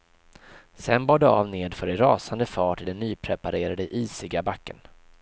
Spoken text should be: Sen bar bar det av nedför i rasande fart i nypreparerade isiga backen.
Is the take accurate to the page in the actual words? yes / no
no